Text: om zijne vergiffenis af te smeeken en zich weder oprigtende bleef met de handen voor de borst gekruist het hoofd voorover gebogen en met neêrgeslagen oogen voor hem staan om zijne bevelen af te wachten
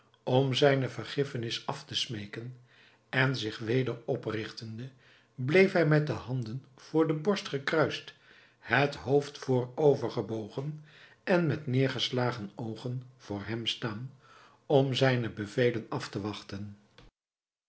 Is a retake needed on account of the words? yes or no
yes